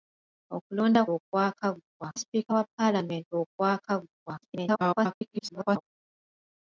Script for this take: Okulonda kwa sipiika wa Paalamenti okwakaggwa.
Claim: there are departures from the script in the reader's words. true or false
true